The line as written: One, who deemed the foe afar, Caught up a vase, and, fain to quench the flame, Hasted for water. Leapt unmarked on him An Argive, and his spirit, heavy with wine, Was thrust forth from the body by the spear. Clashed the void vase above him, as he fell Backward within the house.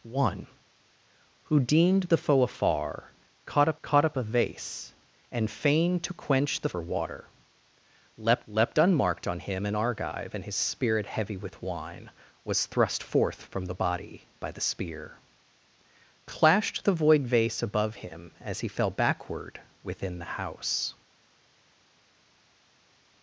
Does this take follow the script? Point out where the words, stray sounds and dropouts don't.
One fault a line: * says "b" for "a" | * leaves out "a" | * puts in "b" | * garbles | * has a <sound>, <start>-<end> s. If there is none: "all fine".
* puts in "Caught up"
* leaves out "flame Hasted"
* puts in "leapt"